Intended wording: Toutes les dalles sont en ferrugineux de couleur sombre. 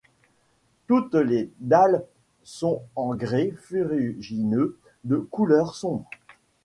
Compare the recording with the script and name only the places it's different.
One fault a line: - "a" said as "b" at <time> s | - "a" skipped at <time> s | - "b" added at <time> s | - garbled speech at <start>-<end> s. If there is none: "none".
- "grès" added at 3.1 s